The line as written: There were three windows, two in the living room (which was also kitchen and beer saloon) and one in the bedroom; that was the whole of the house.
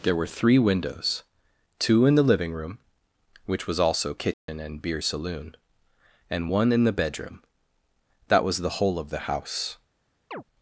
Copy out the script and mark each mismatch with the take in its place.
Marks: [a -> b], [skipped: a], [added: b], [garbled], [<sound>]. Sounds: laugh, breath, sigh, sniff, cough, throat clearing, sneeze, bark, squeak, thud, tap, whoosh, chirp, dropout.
There were three windows, two in the living room (which was also kitchen [dropout] and beer saloon) and one in the bedroom; that was the whole of the house. [chirp]